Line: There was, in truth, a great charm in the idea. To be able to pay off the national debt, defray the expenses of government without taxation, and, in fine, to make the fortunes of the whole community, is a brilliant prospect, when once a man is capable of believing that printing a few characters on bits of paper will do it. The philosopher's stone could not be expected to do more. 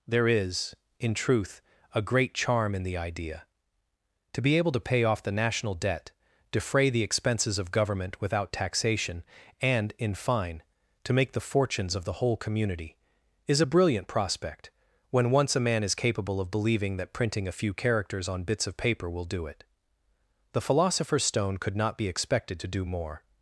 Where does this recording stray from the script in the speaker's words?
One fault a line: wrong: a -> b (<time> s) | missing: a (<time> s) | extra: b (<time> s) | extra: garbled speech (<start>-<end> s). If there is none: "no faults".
wrong: was -> is (0.3 s)